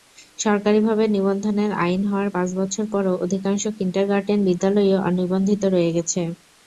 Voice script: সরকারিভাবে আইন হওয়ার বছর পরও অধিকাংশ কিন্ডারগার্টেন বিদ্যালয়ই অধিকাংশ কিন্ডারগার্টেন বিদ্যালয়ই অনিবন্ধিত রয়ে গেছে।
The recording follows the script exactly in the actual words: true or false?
false